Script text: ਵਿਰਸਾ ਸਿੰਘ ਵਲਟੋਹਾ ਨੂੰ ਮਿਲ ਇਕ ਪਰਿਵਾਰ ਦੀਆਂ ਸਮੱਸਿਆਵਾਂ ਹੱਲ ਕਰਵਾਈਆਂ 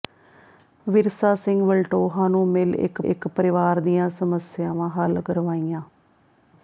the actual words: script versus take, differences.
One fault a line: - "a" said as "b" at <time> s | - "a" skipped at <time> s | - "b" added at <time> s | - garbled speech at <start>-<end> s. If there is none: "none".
- "ਇਕ" added at 3.0 s